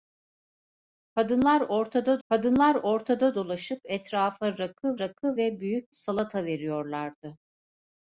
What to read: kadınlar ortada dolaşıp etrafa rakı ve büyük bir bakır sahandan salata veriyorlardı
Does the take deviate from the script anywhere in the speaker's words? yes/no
yes